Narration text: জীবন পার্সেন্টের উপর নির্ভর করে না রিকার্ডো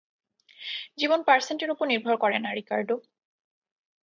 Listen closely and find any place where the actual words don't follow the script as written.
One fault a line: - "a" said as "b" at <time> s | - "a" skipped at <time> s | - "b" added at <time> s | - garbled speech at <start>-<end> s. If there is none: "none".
none